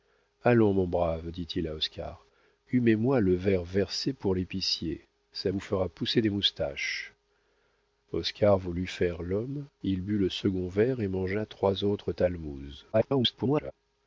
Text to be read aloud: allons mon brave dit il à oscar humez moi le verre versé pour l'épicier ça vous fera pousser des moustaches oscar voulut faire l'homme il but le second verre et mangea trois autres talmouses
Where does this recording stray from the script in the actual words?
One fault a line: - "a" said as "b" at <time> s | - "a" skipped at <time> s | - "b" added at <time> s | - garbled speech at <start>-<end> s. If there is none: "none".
- garbled speech at 12.9-13.7 s